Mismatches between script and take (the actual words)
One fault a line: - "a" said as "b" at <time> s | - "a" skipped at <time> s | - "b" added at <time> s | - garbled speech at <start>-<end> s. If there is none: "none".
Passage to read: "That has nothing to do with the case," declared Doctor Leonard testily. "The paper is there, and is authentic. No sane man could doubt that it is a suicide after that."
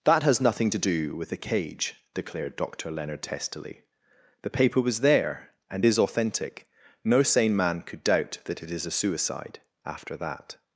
- "case" said as "cage" at 1.4 s
- "is" said as "was" at 4.8 s